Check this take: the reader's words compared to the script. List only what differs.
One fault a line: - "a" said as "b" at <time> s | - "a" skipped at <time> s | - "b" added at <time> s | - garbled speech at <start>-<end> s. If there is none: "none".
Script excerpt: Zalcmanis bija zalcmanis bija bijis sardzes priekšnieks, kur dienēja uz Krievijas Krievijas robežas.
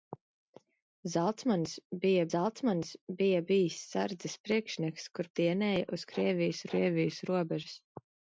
none